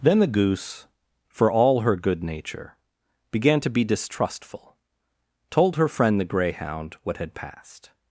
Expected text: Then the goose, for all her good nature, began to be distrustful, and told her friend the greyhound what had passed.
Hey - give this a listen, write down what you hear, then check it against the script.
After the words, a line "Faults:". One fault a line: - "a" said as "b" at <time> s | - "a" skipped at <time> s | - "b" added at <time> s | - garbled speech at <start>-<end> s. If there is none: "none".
Then the goose, for all her good nature, began to be distrustful, told her friend the greyhound what had passed.
Faults:
- "and" skipped at 4.8 s